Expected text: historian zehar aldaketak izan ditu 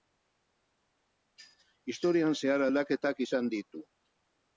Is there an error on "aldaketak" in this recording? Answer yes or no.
no